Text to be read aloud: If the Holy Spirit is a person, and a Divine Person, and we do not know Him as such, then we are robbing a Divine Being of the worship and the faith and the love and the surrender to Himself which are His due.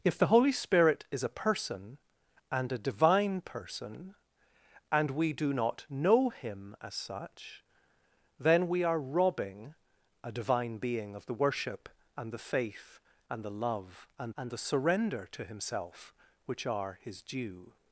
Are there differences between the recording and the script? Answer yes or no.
yes